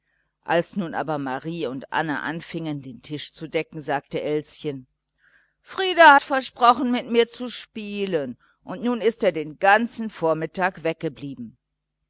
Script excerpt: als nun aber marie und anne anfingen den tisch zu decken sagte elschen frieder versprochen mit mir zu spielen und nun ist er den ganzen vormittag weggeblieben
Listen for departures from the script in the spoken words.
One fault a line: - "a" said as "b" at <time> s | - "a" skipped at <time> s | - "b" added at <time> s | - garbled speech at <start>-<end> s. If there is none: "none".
none